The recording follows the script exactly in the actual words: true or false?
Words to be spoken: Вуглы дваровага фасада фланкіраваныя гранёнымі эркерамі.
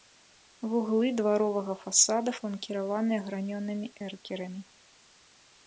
true